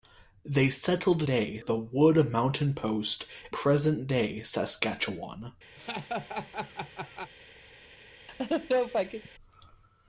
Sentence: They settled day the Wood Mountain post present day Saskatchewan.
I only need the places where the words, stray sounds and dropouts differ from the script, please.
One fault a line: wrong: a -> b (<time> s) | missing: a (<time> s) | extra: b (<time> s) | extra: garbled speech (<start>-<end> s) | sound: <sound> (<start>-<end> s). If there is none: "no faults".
sound: laugh (5.8-7.3 s)
sound: laugh (8.3-9.3 s)